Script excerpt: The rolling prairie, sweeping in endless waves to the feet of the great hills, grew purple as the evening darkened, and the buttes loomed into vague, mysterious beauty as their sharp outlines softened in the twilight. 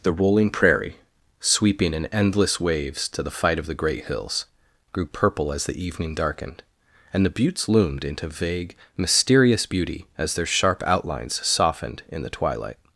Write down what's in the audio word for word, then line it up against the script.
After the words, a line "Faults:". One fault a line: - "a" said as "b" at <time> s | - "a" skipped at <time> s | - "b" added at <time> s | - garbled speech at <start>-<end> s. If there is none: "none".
The rolling prairie, sweeping in endless waves to the fight of the great hills, grew purple as the evening darkened, and the buttes loomed into vague, mysterious beauty as their sharp outlines softened in the twilight.
Faults:
- "feet" said as "fight" at 3.3 s